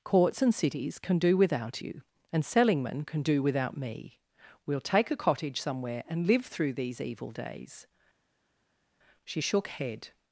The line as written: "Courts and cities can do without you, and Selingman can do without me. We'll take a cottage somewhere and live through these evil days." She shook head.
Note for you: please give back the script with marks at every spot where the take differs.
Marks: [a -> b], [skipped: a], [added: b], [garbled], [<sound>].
"Courts and cities can do without you, and Selingman can do without me. We'll take a cottage somewhere and live through these evil days." She shook head.